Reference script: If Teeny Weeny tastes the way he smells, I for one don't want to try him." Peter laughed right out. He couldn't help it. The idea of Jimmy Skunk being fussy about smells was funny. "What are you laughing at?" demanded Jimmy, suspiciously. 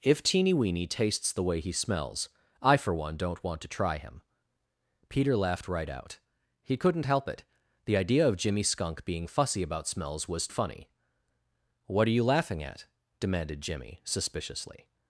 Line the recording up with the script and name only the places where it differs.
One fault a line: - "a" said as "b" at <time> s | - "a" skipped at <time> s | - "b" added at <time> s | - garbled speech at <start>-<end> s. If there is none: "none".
none